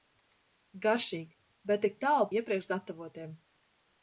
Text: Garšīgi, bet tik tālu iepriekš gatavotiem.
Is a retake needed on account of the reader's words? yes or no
no